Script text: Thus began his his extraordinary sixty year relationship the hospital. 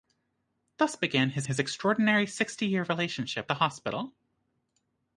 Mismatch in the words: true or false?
false